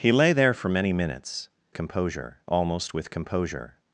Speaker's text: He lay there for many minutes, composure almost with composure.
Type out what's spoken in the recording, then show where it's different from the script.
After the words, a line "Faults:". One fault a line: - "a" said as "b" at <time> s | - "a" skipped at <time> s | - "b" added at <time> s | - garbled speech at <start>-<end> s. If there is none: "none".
He lay there for many minutes, composure almost with composure.
Faults:
none